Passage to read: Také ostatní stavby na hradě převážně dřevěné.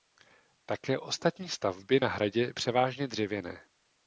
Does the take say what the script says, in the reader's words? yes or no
yes